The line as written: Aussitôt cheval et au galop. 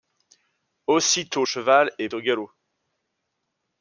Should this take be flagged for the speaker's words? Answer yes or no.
no